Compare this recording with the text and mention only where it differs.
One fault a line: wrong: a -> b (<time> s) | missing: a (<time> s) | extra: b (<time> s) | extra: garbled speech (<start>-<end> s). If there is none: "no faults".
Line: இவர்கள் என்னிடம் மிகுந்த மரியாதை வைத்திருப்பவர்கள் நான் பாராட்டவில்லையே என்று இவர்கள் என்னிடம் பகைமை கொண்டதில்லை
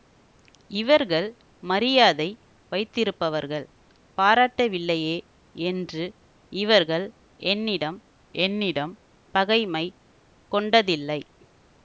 missing: என்னிடம் மிகுந்த (1.3 s)
missing: நான் (3.7 s)
extra: என்னிடம் (8.4 s)